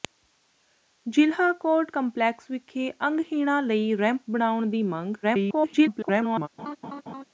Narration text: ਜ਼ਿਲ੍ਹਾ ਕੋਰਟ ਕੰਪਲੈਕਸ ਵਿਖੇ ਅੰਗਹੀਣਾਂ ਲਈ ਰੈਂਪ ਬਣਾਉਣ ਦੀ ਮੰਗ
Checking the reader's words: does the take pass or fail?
fail